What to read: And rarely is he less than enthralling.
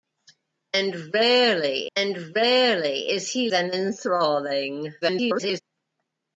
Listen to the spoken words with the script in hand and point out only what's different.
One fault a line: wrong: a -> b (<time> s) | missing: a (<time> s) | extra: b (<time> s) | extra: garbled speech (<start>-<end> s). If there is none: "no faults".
extra: and rarely (2.0 s)
missing: less (3.5 s)
extra: garbled speech (5.0-5.6 s)